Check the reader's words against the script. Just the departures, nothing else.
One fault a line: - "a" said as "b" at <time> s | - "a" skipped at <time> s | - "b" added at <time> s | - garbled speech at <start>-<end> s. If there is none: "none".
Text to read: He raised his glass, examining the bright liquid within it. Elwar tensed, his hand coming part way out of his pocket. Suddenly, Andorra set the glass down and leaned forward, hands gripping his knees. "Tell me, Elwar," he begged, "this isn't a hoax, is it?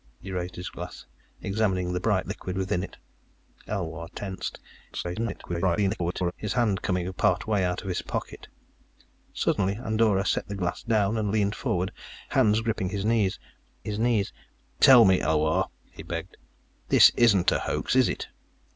- garbled speech at 4.9-6.3 s
- "his knees" added at 13.8 s